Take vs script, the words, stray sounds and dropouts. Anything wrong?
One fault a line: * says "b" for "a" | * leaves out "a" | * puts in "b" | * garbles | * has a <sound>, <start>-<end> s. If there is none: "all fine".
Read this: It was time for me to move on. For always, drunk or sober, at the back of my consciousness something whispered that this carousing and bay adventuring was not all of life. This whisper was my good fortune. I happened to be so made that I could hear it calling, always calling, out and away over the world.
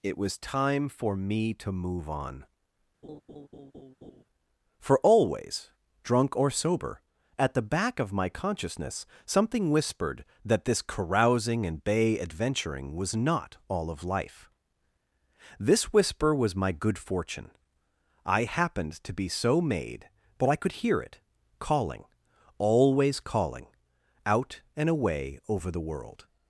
* has a laugh, 3.0-4.2 s
* says "but" for "that"